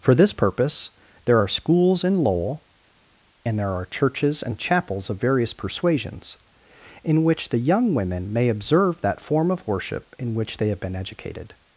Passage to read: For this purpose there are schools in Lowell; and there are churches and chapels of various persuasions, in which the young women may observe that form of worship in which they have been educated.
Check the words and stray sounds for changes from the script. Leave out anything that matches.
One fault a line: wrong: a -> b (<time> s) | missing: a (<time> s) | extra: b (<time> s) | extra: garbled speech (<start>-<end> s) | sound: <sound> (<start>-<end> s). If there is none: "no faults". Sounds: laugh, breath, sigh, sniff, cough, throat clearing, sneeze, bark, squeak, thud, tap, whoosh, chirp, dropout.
no faults